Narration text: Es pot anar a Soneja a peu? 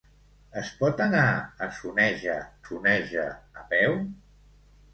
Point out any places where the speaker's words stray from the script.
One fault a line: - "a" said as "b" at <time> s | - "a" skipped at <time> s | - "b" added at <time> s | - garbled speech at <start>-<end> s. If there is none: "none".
- "Soneja" added at 2.7 s